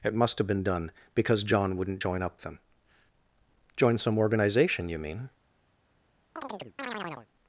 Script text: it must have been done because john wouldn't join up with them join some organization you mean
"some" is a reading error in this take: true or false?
false